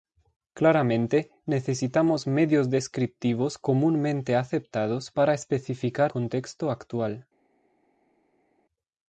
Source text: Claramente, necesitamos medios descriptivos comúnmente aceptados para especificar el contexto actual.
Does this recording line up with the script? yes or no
no